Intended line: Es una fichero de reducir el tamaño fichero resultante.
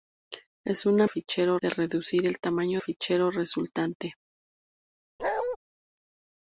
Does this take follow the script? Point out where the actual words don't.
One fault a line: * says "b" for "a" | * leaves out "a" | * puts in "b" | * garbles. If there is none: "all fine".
all fine